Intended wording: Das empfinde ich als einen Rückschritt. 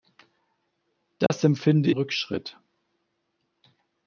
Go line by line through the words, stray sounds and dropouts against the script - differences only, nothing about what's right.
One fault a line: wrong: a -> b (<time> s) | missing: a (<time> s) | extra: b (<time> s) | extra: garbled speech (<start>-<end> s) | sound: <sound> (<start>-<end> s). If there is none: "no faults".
sound: dropout (1.3-1.3 s)
missing: ich als einen (1.9 s)